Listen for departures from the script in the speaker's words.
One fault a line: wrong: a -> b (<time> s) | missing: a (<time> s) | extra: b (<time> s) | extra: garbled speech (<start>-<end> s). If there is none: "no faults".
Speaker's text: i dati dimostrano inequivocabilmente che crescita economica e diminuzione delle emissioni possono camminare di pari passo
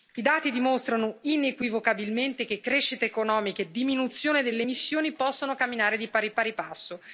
extra: pari (6.3 s)